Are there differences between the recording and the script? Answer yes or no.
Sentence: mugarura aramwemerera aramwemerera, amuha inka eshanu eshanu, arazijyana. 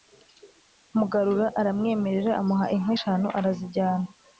yes